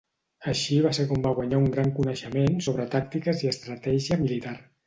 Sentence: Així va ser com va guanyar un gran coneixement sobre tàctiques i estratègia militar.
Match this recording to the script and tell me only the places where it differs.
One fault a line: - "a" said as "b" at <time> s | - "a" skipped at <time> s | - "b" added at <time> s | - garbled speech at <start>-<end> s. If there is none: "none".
none